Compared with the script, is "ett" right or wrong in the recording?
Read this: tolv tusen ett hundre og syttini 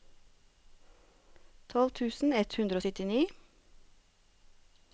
right